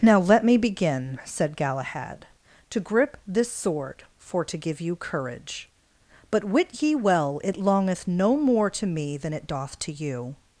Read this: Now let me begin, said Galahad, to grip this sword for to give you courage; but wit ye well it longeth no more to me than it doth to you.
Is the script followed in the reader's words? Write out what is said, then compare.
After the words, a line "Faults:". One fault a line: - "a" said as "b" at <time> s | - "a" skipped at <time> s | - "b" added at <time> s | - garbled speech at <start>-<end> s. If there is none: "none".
Now let me begin, said Galahad, to grip this sword for to give you courage; but wit ye well it longeth no more to me than it doth to you.
Faults:
none